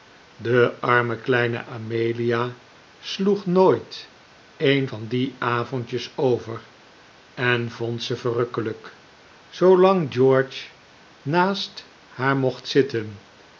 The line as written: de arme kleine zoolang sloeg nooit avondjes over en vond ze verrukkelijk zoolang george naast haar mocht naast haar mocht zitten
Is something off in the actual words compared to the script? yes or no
yes